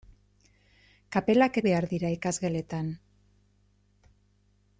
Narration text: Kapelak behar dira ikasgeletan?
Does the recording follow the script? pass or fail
pass